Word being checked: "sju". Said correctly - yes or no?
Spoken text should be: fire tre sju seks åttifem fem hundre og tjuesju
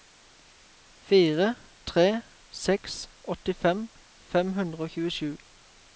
no